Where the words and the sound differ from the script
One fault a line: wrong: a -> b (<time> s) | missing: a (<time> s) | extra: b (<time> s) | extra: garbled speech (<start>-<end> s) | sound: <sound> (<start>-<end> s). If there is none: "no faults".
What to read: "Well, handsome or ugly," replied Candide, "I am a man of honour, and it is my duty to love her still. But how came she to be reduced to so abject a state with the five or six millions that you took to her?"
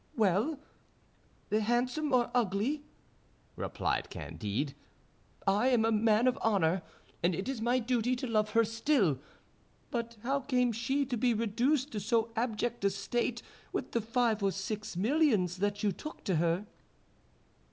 no faults